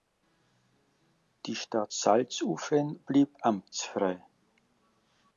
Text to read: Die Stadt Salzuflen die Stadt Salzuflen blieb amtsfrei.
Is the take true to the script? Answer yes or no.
no